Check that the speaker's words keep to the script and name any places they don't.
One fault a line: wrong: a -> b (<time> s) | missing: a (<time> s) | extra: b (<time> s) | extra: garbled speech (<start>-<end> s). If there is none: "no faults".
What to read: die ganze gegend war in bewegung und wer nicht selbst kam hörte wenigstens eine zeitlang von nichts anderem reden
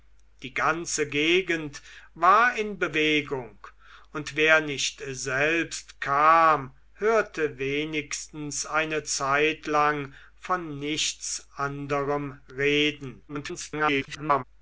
extra: garbled speech (13.3-14.4 s)